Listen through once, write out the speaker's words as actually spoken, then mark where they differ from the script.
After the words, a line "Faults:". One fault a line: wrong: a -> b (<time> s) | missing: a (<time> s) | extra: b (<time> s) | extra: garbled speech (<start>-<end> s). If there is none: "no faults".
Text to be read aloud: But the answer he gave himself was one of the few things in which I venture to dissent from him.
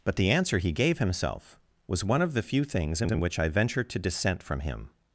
But the answer he gave himself was one of the few things in in which I venture to dissent from him.
Faults:
extra: in (3.1 s)